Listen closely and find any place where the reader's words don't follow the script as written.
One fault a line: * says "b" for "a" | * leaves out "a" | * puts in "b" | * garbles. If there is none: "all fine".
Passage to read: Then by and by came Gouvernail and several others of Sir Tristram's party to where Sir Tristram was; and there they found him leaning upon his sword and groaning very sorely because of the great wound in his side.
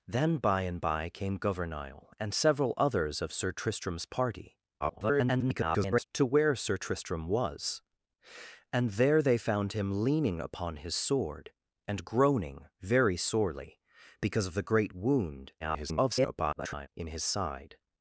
* garbles
* garbles